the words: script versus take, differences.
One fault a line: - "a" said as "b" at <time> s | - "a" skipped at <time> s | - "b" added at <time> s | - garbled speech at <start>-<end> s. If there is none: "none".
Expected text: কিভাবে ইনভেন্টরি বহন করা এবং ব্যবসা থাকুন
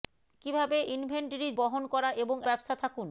none